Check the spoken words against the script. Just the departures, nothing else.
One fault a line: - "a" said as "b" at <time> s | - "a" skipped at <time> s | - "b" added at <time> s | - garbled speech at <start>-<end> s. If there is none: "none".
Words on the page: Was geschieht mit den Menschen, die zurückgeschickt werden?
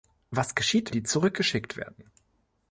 - "mit den Menschen" skipped at 0.9 s